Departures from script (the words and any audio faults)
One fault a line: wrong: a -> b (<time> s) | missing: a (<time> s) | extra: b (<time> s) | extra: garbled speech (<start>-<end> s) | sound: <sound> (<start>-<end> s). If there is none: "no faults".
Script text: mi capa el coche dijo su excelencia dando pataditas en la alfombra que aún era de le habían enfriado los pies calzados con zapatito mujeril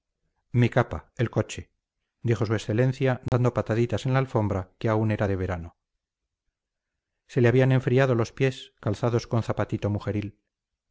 sound: dropout (3.3-3.3 s)
extra: verano se (5.4 s)